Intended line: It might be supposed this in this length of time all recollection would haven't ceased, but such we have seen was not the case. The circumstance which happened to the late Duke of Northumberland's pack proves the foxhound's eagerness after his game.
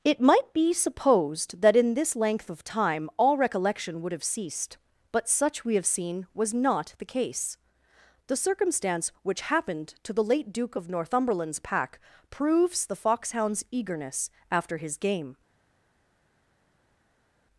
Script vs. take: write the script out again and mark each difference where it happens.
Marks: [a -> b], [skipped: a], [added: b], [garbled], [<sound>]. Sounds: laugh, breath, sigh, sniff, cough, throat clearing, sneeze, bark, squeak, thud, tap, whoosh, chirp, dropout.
It might be supposed [this -> that] in this length of time all recollection would [haven't -> have] ceased, but such we have seen was not the case. The circumstance which happened to the late Duke of Northumberland's pack proves the foxhound's eagerness after his game.